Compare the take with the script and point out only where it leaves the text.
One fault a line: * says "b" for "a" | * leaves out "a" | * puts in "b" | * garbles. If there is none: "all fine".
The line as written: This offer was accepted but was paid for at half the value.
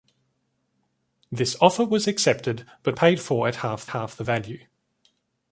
* leaves out "was"
* puts in "half"